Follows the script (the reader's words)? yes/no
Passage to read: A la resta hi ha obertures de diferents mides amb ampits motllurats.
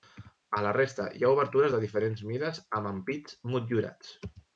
yes